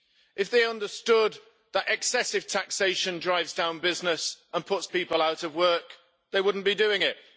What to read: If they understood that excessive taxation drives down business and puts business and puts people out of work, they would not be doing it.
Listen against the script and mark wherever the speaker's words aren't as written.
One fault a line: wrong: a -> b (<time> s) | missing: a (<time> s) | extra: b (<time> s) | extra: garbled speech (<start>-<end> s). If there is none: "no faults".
missing: business and puts (4.9 s)